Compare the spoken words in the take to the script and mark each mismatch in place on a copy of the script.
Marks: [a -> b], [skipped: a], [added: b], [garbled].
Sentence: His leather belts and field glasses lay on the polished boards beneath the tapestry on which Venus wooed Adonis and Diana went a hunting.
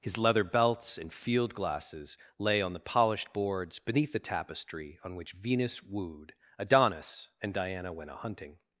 His leather belts and field glasses lay on the polished boards beneath the tapestry on which Venus wooed Adonis and Diana went a hunting.